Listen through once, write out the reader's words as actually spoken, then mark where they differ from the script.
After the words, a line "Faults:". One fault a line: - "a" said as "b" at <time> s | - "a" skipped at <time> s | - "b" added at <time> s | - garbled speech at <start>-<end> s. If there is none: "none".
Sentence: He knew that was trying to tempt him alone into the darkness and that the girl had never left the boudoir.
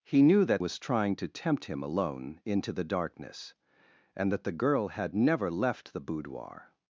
He knew that was trying to tempt him alone into the darkness and that the girl had never left the boudoir.
Faults:
none